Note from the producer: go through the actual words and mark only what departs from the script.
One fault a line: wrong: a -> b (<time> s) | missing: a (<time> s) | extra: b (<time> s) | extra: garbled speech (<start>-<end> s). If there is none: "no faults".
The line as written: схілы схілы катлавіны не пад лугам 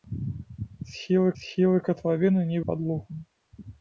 no faults